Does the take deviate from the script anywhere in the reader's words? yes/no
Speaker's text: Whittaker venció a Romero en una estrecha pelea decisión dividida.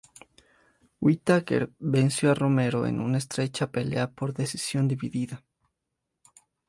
yes